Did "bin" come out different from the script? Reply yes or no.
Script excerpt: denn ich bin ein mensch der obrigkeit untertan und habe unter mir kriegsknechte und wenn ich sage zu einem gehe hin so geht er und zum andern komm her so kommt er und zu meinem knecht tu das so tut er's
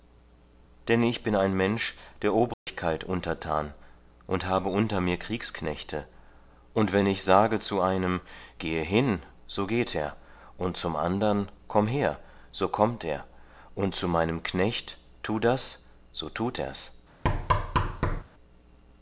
no